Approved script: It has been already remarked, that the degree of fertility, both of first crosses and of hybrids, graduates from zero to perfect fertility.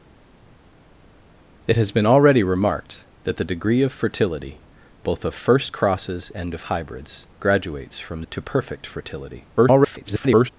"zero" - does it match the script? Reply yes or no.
no